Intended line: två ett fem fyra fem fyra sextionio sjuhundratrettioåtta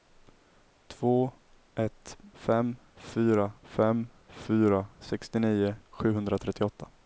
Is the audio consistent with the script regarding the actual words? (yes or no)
yes